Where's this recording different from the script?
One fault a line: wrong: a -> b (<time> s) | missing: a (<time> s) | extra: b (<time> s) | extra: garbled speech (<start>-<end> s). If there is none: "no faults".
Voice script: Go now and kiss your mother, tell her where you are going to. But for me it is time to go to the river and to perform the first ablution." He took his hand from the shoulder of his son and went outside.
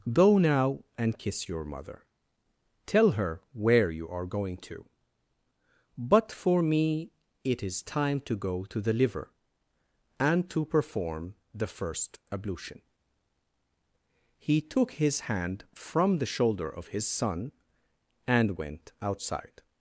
wrong: river -> liver (8.9 s)